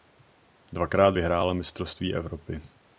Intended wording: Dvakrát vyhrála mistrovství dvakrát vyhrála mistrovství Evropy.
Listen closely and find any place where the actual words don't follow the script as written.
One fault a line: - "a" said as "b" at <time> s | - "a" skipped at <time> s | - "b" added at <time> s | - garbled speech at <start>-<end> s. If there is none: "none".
- "dvakrát vyhrála mistrovství" skipped at 2.1 s